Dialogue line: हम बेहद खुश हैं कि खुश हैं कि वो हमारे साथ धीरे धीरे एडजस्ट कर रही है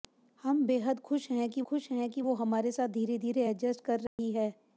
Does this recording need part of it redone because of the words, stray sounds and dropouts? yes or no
yes